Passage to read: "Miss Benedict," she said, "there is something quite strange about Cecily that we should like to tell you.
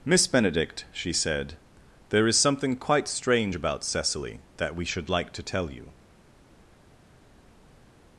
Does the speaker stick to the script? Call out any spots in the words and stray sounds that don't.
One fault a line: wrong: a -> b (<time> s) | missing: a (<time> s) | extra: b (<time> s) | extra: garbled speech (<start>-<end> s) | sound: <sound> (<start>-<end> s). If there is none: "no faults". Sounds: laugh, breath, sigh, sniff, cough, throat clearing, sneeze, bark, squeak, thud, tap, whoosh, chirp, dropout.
no faults